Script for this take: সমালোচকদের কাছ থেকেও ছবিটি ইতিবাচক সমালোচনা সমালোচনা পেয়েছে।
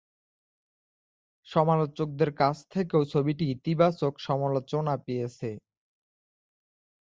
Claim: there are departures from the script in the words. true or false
true